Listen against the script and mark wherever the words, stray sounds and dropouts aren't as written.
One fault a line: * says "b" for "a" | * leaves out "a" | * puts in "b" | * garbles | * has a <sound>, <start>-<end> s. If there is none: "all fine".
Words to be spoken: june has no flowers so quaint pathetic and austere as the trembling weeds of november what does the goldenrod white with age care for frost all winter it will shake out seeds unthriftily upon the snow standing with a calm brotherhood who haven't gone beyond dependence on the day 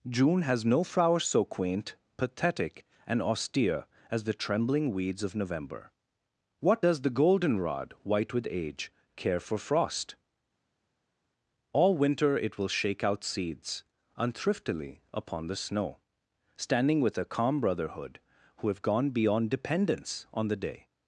* says "have" for "haven't"